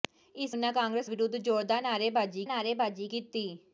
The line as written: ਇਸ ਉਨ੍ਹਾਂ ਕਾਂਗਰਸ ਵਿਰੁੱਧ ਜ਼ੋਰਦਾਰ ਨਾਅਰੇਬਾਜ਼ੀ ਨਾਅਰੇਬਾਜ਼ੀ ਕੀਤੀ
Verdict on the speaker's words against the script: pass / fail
pass